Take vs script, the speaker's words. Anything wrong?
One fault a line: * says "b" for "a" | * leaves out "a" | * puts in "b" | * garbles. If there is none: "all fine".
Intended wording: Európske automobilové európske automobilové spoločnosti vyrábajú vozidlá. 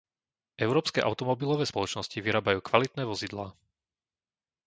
* leaves out "európske automobilové"
* puts in "kvalitné"